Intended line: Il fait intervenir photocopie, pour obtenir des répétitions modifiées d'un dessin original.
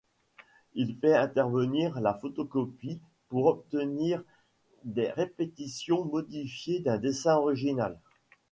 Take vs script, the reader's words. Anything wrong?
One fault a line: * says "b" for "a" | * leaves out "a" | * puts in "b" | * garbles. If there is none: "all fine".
* puts in "la"